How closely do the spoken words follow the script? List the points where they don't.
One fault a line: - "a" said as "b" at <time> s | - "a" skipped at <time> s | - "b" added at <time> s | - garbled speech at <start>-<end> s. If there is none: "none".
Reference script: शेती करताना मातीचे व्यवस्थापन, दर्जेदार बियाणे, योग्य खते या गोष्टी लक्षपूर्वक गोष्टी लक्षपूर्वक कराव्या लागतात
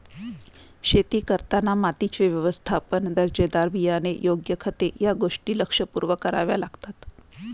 - "गोष्टी लक्षपूर्वक" skipped at 6.2 s